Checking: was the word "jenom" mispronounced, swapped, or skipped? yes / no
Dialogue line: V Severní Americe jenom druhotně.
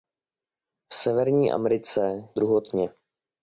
yes